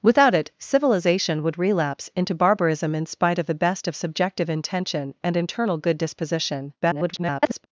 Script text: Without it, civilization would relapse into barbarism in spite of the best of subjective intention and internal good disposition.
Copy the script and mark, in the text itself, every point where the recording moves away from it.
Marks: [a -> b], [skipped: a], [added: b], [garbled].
Without it, civilization would relapse into barbarism in spite of the best of subjective intention and internal good disposition. [garbled]